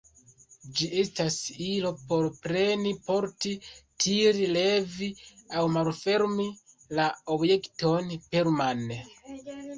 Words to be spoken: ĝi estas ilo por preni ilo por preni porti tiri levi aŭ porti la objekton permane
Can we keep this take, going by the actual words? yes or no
no